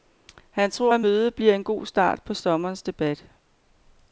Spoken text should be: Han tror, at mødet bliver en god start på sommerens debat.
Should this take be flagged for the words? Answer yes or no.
no